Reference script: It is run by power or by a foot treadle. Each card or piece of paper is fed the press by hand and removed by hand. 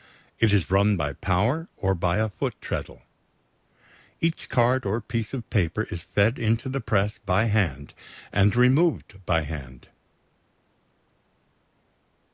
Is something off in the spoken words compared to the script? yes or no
yes